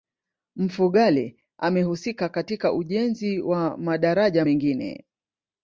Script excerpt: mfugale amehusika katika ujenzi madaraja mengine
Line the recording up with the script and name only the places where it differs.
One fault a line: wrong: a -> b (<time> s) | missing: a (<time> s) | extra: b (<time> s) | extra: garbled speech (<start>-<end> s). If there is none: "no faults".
extra: wa (3.4 s)